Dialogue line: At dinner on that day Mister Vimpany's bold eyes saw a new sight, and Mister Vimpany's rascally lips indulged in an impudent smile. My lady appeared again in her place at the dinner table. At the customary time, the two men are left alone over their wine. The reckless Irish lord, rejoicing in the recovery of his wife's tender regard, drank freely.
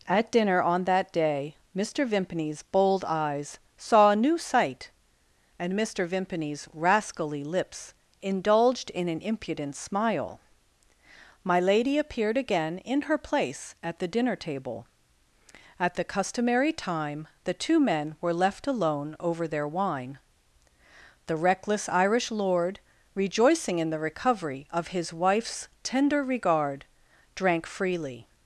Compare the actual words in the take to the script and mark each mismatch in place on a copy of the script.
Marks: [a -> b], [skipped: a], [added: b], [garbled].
At dinner on that day Mister Vimpany's bold eyes saw a new sight, and Mister Vimpany's rascally lips indulged in an impudent smile. My lady appeared again in her place at the dinner table. At the customary time, the two men [are -> were] left alone over their wine. The reckless Irish lord, rejoicing in the recovery of his wife's tender regard, drank freely.